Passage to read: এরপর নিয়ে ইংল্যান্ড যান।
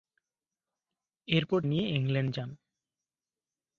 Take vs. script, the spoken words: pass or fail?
pass